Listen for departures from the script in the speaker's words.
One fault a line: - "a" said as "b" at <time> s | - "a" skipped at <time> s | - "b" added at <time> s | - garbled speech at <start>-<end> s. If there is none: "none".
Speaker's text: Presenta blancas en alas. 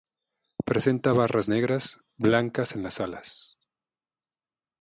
- "barras negras" added at 1.1 s
- "las" added at 2.8 s